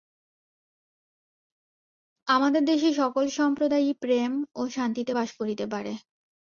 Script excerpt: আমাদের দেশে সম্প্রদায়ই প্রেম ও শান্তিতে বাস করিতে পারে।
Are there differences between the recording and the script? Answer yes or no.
yes